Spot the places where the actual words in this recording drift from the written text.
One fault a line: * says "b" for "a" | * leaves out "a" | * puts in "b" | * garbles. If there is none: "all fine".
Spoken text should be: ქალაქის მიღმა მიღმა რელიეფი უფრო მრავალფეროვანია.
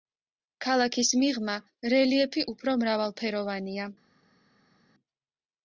* leaves out "მიღმა"